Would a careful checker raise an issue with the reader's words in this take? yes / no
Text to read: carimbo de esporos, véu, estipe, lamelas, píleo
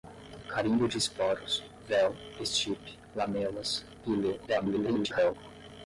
yes